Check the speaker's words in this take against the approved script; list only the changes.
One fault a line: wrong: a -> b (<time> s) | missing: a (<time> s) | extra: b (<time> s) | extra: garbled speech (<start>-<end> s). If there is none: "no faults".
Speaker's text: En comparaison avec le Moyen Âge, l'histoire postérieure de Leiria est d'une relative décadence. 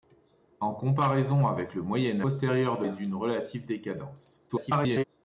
missing: Âge l'histoire (2.2 s)
missing: Leiria (2.8 s)
extra: garbled speech (4.5-5.0 s)